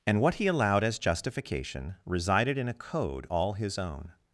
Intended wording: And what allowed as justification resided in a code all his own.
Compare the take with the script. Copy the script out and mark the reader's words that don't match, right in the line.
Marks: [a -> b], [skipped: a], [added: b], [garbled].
And what [added: he] allowed as justification resided in a code all his own.